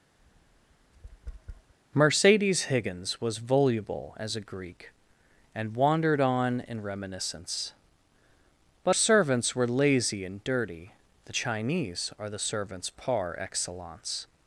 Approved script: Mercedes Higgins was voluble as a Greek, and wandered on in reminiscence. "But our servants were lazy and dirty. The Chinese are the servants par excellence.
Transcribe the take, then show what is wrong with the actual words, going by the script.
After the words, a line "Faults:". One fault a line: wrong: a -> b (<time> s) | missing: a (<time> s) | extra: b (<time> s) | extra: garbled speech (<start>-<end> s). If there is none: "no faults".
Mercedes Higgins was voluble as a Greek, and wandered on in reminiscence. "But servants were lazy and dirty. The Chinese are the servants par excellence.
Faults:
missing: our (9.0 s)